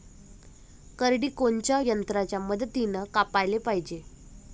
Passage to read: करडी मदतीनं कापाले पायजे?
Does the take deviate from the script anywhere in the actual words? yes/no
yes